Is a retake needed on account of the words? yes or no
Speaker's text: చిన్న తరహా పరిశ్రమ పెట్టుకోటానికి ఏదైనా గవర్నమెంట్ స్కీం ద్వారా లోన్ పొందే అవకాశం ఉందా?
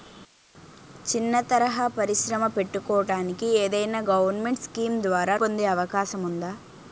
yes